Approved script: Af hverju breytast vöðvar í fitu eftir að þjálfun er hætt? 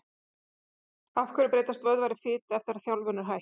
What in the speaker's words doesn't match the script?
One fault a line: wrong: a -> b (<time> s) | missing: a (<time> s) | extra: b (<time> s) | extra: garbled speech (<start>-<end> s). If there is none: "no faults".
no faults